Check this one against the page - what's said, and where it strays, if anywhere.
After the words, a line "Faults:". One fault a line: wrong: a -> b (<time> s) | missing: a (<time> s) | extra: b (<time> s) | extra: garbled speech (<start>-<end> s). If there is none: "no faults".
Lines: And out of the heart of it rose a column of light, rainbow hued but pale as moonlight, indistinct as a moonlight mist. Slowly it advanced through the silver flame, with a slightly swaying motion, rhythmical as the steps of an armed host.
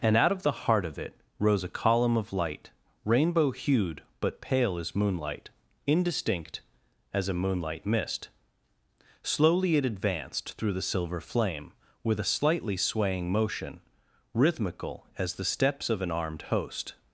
And out of the heart of it rose a column of light, rainbow hued but pale as moonlight, indistinct as a moonlight mist. Slowly it advanced through the silver flame, with a slightly swaying motion, rhythmical as the steps of an armed host.
Faults:
no faults